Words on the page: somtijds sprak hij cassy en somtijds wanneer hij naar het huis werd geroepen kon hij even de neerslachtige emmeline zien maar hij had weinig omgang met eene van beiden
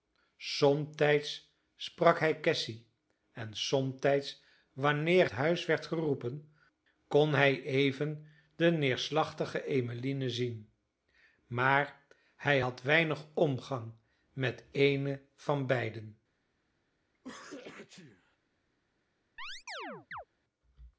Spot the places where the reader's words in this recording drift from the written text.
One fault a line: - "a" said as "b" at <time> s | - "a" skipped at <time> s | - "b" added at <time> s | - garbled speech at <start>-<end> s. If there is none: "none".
- "hij naar het" skipped at 5.3 s